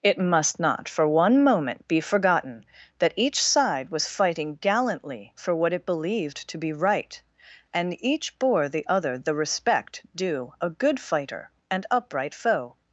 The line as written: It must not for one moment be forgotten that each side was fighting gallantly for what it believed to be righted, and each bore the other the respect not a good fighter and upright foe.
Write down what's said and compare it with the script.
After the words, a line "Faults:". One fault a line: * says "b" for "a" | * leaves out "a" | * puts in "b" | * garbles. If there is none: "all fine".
It must not for one moment be forgotten that each side was fighting gallantly for what it believed to be right, and each bore the other the respect due a good fighter and upright foe.
Faults:
* says "right" for "righted"
* says "due" for "not"